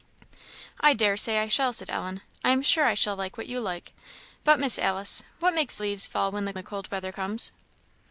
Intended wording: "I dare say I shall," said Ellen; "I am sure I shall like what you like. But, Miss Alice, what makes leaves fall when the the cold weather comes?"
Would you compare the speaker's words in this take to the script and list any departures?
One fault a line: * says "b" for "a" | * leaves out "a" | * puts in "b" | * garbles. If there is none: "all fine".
all fine